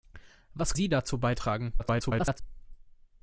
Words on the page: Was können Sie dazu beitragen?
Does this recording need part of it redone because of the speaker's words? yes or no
yes